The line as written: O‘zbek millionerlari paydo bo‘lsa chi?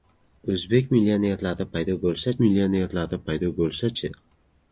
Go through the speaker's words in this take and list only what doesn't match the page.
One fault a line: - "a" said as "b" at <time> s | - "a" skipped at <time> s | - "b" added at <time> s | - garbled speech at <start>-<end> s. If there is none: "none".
- "millionerlari paydo bo‘lsa" added at 2.4 s